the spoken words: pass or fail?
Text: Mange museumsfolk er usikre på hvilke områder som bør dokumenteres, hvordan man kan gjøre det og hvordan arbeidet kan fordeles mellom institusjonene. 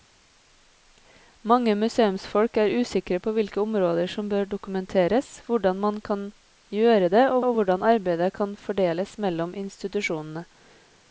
fail